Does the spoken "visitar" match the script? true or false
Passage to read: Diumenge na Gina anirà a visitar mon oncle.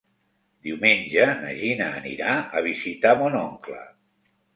true